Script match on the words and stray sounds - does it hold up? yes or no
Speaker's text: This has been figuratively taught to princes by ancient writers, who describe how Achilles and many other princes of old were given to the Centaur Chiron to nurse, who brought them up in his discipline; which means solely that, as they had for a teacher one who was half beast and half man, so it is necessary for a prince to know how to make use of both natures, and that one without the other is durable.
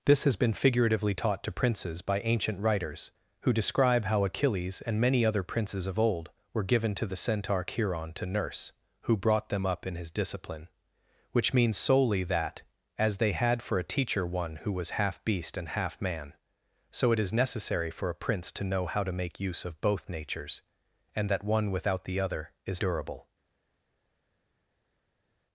yes